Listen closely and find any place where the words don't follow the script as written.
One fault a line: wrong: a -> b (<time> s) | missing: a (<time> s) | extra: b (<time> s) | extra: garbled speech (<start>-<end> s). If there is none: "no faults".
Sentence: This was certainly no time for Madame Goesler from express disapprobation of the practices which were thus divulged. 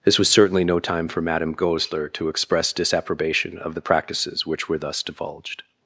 wrong: from -> to (2.1 s)